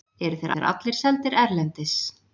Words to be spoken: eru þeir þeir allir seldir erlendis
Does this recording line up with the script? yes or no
yes